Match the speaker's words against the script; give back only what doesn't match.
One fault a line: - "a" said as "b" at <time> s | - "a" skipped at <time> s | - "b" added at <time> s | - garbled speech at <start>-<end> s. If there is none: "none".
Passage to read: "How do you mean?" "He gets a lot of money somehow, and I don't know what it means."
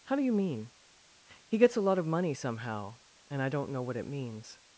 none